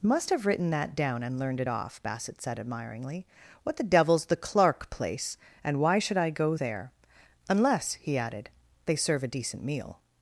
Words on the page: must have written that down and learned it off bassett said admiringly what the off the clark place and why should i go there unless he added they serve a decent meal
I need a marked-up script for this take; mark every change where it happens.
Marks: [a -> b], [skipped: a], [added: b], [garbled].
must have written that down and learned it off bassett said admiringly what the [off -> devil's] the clark place and why should i go there unless he added they serve a decent meal